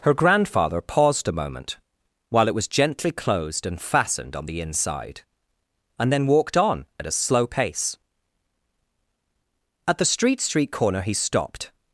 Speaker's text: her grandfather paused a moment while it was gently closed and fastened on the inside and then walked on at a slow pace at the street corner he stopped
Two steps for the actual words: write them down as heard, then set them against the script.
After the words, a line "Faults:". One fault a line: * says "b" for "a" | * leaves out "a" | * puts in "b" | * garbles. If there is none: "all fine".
her grandfather paused a moment while it was gently closed and fastened on the inside and then walked on at a slow pace at the street street corner he stopped
Faults:
* puts in "street"